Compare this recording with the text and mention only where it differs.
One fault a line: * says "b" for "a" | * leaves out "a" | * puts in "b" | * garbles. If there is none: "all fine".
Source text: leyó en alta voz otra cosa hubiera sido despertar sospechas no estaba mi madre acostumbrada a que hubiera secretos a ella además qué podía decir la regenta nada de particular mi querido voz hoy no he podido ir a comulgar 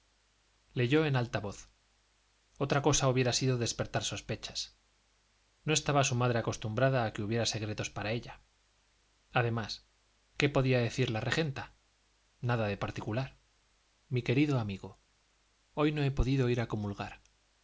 * says "su" for "mi"
* says "para" for "a"
* says "amigo" for "voz"